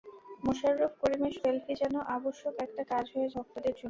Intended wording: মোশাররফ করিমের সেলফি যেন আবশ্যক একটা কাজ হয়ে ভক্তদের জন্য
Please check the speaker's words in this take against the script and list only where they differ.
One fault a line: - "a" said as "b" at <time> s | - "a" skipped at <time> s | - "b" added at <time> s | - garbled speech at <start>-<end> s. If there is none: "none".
none